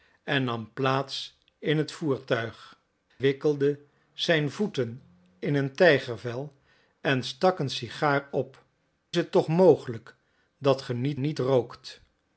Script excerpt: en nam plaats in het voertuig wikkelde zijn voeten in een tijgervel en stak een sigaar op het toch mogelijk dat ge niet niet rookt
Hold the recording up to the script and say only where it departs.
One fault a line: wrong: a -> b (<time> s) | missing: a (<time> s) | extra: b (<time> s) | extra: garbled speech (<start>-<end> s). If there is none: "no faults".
no faults